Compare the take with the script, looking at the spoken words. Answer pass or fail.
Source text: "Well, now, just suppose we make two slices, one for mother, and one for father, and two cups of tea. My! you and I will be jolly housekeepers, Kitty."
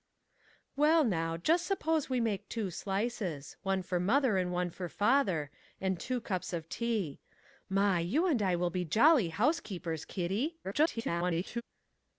fail